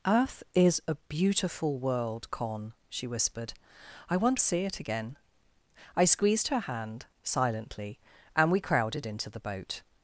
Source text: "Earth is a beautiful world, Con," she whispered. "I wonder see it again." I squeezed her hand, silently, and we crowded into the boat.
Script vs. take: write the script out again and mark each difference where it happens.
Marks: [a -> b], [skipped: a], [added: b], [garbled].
"Earth is a beautiful world, Con," she whispered. "I wonder see it again." I squeezed her hand, silently, and we crowded into the boat.